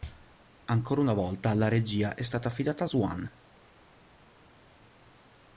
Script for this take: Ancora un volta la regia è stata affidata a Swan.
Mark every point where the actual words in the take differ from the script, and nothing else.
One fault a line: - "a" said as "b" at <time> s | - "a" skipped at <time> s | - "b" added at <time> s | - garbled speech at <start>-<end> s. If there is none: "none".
- "un" said as "una" at 1.0 s